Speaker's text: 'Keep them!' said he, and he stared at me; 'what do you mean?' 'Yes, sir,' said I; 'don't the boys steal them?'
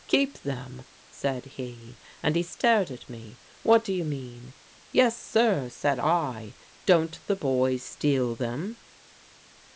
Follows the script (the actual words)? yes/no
yes